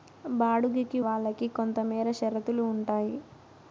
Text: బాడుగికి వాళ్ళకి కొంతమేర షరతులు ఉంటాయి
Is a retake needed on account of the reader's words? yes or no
no